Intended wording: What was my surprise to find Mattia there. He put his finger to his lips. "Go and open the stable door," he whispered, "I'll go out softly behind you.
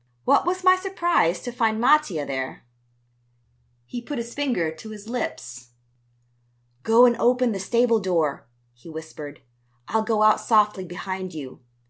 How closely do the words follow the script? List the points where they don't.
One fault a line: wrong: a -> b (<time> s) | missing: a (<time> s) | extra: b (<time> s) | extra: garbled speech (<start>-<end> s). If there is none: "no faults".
no faults